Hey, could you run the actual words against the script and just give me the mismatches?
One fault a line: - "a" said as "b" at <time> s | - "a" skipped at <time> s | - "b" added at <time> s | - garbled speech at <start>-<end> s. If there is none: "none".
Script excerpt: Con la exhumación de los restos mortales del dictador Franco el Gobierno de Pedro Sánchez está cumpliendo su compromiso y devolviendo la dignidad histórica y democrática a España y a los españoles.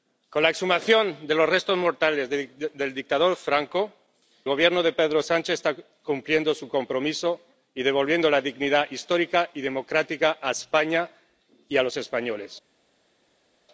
- "el" skipped at 3.9 s